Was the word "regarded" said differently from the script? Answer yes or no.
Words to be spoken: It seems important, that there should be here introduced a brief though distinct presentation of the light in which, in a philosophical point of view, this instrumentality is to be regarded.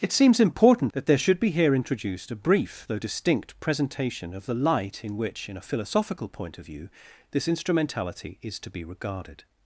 no